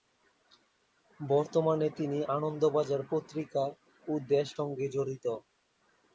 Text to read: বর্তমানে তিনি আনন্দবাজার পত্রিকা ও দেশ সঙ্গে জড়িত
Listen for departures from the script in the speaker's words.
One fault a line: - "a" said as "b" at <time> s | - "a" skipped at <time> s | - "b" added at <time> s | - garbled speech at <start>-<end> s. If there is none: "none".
none